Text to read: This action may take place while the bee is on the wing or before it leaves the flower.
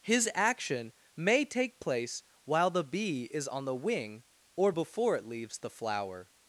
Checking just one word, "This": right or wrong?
wrong